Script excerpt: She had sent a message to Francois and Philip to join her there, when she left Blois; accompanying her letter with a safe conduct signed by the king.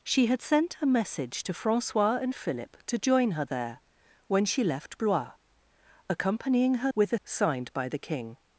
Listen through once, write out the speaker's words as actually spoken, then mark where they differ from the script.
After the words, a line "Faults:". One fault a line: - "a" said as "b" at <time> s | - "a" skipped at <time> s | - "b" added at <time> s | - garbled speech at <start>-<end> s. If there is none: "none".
She had sent a message to Francois and Philip to join her there, when she left Blois; accompanying her with a signed by the king.
Faults:
- "letter" skipped at 6.9 s
- "safe conduct" skipped at 7.2 s